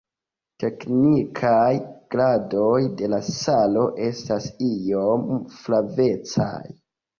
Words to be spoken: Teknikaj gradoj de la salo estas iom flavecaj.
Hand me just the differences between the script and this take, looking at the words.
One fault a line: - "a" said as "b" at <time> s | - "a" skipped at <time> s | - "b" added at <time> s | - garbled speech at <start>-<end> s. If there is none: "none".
none